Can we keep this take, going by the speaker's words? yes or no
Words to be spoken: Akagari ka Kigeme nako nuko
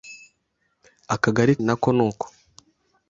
no